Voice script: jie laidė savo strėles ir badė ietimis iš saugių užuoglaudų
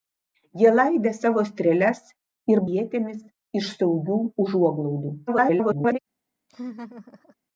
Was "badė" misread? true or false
true